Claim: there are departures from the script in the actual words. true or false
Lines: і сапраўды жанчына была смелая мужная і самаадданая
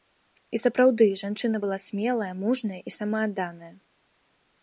false